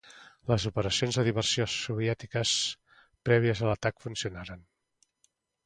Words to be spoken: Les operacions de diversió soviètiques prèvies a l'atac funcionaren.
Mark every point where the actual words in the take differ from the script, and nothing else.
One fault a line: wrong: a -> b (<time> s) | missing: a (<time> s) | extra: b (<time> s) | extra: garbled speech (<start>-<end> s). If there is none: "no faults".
no faults